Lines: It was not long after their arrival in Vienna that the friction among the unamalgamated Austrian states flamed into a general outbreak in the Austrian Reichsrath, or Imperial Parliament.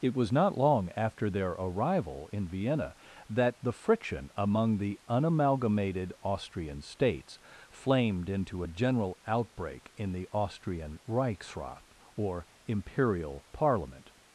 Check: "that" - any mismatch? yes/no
no